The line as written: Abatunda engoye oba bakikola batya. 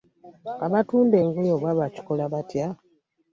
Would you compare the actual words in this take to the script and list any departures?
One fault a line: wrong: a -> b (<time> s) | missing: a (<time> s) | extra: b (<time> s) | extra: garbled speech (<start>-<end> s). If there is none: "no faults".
no faults